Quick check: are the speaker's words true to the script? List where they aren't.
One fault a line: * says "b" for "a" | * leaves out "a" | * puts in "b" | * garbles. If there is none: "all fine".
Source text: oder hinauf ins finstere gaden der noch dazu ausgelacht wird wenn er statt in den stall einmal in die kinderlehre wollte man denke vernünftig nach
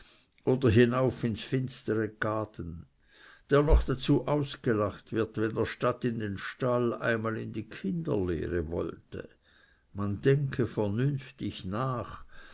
all fine